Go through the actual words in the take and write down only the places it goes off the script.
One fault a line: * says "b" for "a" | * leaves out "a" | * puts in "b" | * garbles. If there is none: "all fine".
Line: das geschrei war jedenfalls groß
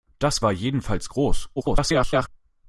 * leaves out "geschrei"
* garbles